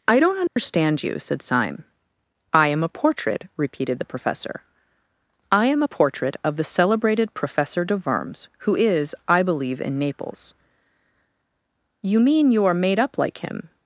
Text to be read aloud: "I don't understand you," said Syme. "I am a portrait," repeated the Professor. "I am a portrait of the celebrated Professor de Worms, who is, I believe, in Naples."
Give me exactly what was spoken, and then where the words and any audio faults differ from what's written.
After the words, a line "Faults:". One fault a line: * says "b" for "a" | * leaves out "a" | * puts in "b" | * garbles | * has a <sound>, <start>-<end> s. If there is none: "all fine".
"I don't understand you," said Syme. "I am a portrait," repeated the Professor. "I am a portrait of the celebrated Professor de Worms, who is, I believe, in Naples." "You mean you are made up like him
Faults:
* has a dropout, 0.5-0.6 s
* puts in "You mean you are made up like him"